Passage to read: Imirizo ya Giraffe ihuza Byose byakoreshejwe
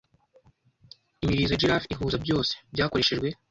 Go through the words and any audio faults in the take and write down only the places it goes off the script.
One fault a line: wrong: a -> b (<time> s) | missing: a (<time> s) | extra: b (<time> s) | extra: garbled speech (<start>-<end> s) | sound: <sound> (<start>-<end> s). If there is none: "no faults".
no faults